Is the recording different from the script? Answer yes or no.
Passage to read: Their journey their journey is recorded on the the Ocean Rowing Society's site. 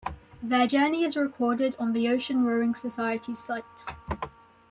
yes